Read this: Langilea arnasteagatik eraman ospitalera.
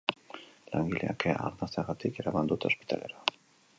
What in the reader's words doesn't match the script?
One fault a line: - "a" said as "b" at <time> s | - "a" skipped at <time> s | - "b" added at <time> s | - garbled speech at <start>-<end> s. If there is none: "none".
- "kea" added at 1.2 s
- "dute" added at 2.5 s